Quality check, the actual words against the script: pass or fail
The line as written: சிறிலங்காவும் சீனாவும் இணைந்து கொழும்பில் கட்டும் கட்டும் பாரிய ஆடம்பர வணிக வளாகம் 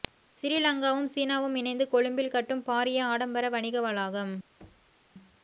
fail